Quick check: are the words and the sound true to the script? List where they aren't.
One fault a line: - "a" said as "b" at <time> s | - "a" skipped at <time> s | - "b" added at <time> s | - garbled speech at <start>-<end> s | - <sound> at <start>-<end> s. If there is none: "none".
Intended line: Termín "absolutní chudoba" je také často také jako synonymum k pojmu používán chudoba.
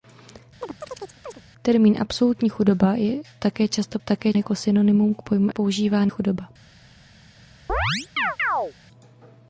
- chirp at 0.6-1.4 s
- chirp at 7.7-8.7 s